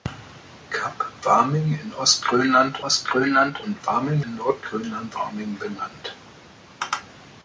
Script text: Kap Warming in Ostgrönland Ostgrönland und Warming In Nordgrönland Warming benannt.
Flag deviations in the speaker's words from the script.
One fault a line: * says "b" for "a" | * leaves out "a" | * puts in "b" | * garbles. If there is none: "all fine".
all fine